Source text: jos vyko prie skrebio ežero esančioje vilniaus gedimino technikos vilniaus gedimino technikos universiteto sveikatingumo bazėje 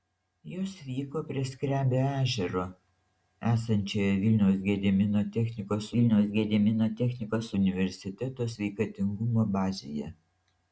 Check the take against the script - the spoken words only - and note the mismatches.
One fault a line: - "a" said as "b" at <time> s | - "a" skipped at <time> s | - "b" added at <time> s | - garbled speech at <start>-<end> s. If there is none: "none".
none